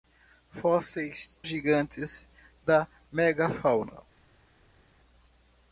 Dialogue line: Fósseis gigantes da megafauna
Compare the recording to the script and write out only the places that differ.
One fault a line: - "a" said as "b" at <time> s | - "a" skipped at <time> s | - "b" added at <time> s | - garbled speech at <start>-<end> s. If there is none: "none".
none